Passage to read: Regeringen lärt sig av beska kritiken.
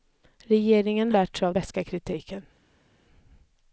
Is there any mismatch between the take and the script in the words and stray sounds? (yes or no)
no